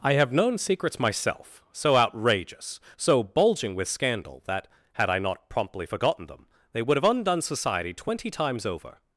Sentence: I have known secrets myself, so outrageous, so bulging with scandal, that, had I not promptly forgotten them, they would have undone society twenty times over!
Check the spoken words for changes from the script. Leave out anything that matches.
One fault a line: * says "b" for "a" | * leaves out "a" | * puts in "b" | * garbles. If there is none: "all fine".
all fine